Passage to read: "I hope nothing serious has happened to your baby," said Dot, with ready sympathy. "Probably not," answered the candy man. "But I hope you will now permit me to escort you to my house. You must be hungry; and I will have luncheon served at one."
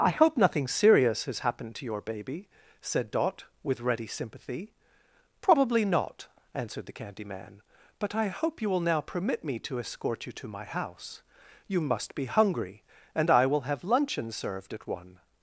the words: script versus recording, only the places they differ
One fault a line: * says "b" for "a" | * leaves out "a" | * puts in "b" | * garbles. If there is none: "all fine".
all fine